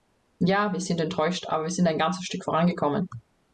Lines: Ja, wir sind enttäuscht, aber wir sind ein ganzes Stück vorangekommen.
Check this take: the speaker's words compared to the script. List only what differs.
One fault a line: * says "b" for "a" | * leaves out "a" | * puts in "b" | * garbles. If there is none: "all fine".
all fine